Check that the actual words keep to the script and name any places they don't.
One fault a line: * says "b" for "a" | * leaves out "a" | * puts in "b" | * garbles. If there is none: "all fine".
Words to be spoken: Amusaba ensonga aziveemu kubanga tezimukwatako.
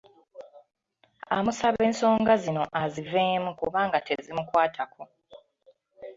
* puts in "zino"